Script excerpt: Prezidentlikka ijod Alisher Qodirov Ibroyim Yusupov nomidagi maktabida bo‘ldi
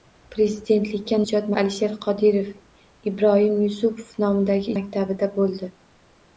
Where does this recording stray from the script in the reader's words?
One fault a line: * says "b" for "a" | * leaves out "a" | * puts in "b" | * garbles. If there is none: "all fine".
all fine